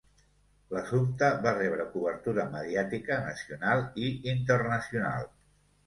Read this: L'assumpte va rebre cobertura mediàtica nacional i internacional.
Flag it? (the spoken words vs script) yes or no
no